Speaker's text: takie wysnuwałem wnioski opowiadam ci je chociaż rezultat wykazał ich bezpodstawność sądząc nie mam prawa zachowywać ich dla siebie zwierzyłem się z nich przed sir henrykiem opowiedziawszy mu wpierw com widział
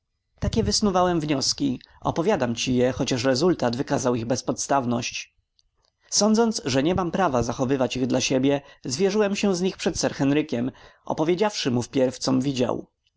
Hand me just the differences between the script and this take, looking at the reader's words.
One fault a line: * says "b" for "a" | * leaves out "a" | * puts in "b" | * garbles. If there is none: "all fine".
* puts in "że"